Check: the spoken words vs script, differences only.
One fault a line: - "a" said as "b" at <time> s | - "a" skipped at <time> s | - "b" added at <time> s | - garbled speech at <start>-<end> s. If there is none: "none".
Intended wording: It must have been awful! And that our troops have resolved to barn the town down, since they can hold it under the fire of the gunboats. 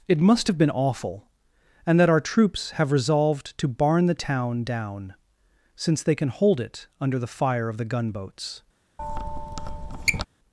none